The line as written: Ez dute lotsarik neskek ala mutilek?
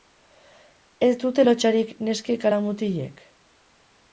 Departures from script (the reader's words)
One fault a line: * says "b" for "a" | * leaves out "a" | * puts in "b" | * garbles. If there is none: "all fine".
all fine